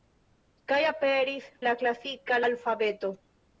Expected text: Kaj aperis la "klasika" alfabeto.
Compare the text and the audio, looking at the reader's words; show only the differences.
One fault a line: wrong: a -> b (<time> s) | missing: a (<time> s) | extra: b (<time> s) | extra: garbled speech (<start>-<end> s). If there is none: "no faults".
no faults